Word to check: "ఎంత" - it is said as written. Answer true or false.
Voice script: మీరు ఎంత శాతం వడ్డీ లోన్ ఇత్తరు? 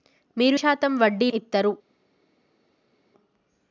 false